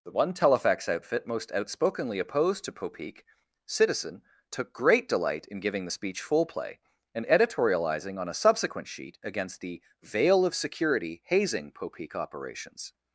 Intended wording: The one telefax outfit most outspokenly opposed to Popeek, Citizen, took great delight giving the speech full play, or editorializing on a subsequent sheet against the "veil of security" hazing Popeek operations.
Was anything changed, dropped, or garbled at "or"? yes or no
yes